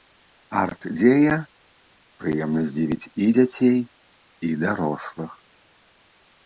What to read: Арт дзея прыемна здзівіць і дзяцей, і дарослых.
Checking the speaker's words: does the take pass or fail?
pass